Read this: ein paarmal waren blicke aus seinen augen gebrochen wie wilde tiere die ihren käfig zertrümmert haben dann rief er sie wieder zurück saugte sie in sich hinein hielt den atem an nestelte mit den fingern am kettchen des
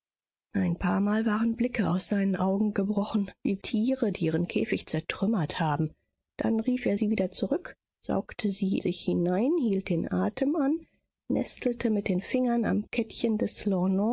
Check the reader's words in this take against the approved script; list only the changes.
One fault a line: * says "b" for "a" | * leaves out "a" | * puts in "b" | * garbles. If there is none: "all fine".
* leaves out "wilde"
* leaves out "in"